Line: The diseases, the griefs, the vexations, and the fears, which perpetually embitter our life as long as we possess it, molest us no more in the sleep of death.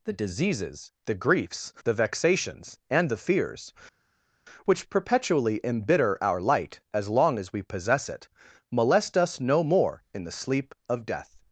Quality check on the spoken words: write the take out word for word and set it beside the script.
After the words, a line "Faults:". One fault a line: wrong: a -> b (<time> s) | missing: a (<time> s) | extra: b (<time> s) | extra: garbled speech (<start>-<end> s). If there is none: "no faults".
The diseases, the griefs, the vexations, and the fears, which perpetually embitter our light as long as we possess it, molest us no more in the sleep of death.
Faults:
wrong: life -> light (6.4 s)